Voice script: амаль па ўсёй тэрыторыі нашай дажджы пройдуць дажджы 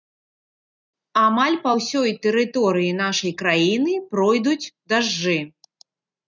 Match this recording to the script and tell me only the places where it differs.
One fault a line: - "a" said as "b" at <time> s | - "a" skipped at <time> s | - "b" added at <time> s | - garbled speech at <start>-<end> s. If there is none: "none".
- "дажджы" said as "краіны" at 3.4 s